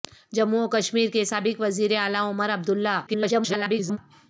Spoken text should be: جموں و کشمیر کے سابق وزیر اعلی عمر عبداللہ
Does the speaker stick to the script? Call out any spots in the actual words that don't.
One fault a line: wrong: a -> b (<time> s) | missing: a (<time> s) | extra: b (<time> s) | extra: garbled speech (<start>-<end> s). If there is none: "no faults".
extra: garbled speech (3.1-4.0 s)